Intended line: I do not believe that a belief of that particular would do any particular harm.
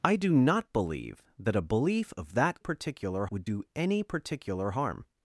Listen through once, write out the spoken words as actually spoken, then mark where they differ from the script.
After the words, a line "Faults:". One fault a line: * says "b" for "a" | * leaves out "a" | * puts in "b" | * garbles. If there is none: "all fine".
I do not believe that a belief of that particular would do any particular harm.
Faults:
all fine